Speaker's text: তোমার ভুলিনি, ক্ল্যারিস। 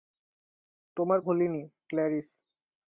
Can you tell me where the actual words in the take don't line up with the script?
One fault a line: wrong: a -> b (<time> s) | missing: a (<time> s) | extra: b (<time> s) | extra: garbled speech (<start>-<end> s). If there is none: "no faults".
no faults